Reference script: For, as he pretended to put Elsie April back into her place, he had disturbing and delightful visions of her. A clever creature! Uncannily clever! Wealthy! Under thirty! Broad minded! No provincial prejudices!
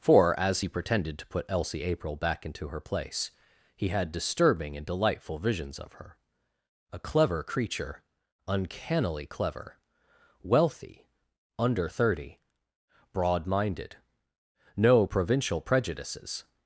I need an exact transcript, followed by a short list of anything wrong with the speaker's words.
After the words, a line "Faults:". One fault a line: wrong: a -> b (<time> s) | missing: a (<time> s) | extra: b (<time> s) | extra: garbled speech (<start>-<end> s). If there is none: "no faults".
For, as he pretended to put Elsie April back into her place, he had disturbing and delightful visions of her. A clever creature! Uncannily clever! Wealthy! Under thirty! Broad minded! No provincial prejudices!
Faults:
no faults